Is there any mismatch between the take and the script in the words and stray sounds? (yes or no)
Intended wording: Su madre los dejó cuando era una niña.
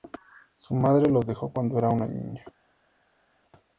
no